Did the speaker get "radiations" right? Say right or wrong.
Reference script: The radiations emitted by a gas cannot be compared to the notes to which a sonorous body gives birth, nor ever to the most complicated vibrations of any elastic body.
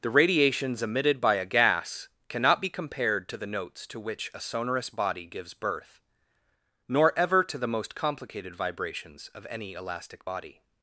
right